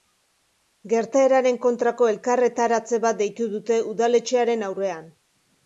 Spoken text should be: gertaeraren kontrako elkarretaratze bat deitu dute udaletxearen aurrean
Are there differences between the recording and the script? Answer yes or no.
no